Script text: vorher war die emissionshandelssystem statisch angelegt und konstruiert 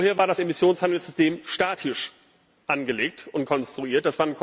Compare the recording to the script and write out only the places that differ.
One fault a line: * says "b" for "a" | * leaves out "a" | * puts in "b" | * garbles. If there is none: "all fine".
* says "das" for "die"